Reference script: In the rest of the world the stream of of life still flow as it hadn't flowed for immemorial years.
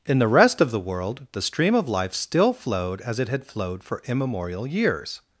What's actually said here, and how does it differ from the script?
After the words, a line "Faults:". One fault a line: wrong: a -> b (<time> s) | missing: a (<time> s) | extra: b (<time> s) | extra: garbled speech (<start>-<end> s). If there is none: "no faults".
In the rest of the world the stream of life still flowed as it had flowed for immemorial years.
Faults:
missing: of (1.9 s)
wrong: flow -> flowed (2.5 s)
wrong: hadn't -> had (3.3 s)